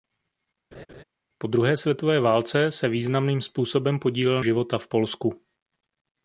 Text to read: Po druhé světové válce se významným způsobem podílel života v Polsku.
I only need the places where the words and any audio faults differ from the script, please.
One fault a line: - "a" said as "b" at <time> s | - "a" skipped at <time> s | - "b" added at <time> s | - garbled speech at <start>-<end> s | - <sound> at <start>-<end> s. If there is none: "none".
- laugh at 0.7-1.0 s